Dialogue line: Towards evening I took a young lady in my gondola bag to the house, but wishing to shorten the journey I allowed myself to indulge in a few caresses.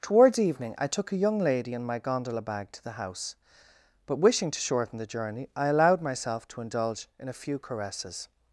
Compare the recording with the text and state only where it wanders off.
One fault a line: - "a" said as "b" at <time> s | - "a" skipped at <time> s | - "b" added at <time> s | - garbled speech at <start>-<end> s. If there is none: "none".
none